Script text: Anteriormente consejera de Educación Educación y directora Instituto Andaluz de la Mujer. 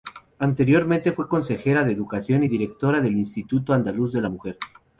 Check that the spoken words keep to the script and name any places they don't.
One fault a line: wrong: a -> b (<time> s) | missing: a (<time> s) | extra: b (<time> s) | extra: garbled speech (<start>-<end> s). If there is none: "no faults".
extra: fue (1.1 s)
missing: Educación (2.4 s)
extra: del (3.0 s)